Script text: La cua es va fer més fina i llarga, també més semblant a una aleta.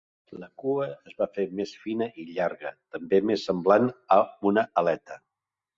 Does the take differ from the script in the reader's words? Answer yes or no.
no